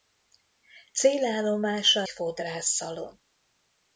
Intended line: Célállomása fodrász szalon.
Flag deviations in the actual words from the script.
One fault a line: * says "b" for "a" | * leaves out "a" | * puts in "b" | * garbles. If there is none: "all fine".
all fine